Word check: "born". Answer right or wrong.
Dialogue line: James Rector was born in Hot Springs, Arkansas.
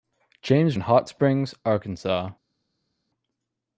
wrong